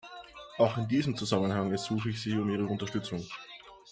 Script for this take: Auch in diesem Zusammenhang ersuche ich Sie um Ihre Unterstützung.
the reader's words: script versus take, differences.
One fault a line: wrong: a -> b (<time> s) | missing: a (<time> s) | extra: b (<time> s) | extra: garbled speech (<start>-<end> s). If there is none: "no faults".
no faults